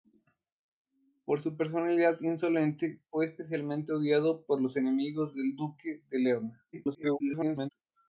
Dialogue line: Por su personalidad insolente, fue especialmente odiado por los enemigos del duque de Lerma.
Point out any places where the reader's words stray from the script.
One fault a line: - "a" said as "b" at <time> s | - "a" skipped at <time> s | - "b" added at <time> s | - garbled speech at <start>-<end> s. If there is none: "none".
- garbled speech at 6.7-7.7 s